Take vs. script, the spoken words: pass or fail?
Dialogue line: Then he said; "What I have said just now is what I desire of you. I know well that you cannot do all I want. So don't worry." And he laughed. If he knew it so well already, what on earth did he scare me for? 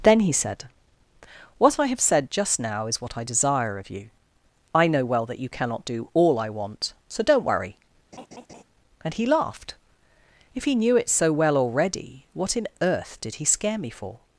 fail